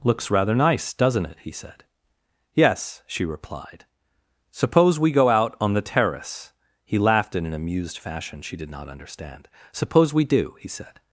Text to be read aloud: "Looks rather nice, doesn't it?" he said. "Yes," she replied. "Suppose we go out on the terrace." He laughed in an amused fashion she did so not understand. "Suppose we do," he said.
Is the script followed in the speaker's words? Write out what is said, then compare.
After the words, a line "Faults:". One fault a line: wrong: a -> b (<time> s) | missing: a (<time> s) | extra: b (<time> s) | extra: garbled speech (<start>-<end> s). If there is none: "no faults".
"Looks rather nice, doesn't it?" he said. "Yes," she replied. "Suppose we go out on the terrace." He laughed in an amused fashion she did not understand. "Suppose we do," he said.
Faults:
missing: so (8.7 s)